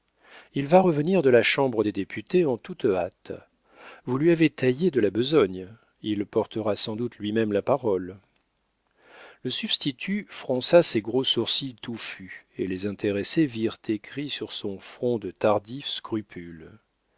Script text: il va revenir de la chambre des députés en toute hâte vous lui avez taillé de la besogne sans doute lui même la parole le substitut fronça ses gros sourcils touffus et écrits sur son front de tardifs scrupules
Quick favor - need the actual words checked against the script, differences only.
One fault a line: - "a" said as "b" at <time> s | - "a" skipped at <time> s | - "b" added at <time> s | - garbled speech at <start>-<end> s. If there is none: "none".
- "il portera" added at 6.0 s
- "les intéressés virent" added at 12.7 s